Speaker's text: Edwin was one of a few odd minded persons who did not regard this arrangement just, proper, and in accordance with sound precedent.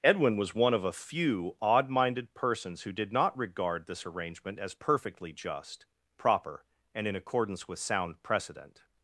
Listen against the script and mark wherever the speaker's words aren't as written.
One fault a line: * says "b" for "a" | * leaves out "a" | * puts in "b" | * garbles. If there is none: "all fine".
* puts in "as perfectly"